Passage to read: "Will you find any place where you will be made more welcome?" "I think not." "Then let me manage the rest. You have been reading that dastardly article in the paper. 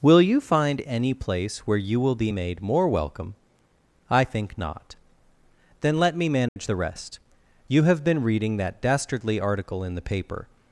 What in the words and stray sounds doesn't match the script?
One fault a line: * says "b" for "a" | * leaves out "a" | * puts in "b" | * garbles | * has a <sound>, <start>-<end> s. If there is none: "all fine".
* has a dropout, 6.5-6.6 s